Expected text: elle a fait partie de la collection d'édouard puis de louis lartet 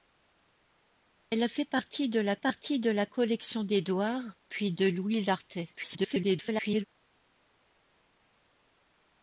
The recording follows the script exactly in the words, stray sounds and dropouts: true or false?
false